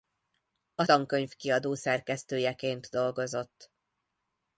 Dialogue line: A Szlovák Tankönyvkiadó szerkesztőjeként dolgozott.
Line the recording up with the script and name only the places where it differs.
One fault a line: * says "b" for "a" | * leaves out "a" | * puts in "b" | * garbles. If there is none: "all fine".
* leaves out "Szlovák"